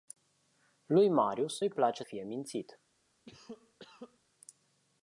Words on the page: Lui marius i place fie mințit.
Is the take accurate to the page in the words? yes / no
yes